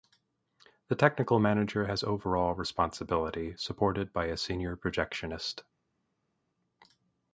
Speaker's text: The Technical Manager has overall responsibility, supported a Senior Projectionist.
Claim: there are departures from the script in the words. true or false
true